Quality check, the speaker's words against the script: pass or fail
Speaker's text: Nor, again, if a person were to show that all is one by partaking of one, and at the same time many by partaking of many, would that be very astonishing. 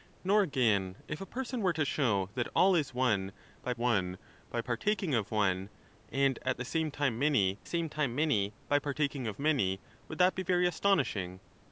fail